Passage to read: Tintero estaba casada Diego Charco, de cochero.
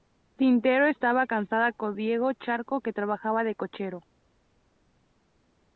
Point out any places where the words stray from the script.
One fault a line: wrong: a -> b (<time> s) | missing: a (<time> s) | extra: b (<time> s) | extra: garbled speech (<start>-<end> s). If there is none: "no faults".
extra: con (1.7 s)
extra: que trabajaba (2.8 s)